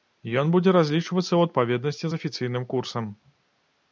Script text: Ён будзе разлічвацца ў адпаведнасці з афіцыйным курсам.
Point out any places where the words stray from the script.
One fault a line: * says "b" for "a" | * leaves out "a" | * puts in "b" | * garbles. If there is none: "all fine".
all fine